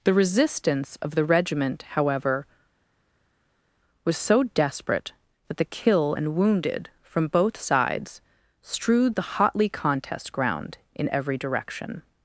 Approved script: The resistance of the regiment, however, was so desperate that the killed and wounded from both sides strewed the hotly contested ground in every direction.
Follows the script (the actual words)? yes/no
no